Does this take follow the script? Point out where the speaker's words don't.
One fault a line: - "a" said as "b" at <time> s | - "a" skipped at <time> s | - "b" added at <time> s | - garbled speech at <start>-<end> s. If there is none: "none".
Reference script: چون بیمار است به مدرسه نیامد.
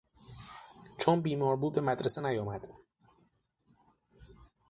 - "است" said as "بود" at 1.6 s